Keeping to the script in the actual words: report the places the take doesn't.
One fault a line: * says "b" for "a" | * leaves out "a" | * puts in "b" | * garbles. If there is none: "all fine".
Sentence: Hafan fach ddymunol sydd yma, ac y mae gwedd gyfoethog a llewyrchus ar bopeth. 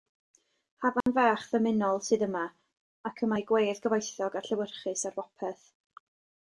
all fine